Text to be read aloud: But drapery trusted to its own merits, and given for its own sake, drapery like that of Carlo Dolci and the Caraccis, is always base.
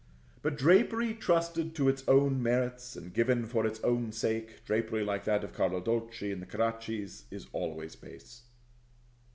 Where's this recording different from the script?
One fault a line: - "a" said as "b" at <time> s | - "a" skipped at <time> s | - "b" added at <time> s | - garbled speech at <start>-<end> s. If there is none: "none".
none